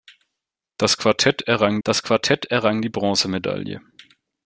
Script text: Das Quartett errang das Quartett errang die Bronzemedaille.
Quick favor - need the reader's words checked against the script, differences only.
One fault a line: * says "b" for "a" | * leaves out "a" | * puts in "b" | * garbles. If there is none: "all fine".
all fine